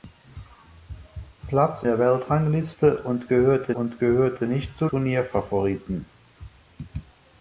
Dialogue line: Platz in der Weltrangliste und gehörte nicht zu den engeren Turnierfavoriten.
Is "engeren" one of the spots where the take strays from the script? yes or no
yes